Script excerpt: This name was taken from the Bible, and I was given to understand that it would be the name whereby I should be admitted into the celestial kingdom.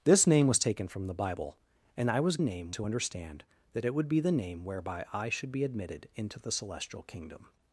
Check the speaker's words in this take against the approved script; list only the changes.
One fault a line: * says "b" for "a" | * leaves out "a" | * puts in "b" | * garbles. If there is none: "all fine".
* says "name" for "given"